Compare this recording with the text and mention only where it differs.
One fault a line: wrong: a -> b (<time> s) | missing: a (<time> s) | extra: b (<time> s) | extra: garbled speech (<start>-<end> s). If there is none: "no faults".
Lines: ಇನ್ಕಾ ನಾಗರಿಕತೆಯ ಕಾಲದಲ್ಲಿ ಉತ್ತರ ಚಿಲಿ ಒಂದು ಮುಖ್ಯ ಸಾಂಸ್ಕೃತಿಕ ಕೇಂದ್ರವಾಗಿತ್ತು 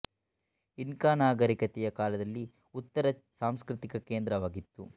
missing: ಚಿಲಿ ಒಂದು ಮುಖ್ಯ (3.0 s)